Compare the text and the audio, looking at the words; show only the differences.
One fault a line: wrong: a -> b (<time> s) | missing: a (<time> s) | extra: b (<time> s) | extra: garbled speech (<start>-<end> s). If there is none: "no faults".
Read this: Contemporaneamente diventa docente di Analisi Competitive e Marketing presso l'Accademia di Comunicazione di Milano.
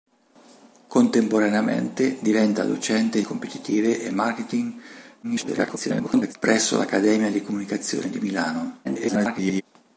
missing: di Analisi (3.2 s)
extra: garbled speech (5.2-6.4 s)
extra: garbled speech (8.8-9.6 s)